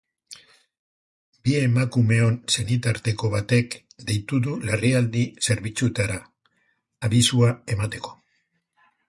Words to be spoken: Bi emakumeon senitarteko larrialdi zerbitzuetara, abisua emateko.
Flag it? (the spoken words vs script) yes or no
yes